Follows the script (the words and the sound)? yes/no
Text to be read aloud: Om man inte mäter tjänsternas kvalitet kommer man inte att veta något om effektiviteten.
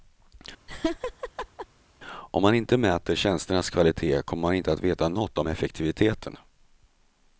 no